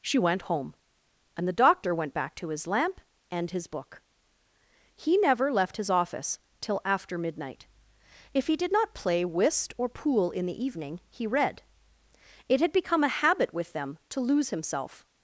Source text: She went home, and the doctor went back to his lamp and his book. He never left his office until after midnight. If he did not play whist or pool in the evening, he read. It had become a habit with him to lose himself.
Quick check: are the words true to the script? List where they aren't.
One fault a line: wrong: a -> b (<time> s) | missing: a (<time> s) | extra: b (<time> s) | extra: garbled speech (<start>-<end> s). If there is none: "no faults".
wrong: until -> till (6.6 s)
wrong: him -> them (13.7 s)